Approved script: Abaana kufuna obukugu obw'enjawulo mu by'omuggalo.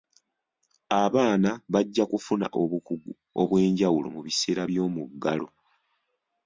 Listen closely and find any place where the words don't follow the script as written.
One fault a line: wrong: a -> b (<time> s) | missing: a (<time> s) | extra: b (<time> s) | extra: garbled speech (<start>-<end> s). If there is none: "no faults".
extra: bajja (1.7 s)
extra: biseera (4.3 s)